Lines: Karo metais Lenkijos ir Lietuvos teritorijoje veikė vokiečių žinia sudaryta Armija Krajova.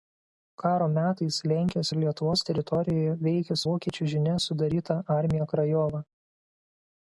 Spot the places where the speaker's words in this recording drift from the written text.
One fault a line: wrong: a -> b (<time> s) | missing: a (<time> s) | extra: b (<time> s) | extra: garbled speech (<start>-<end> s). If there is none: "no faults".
no faults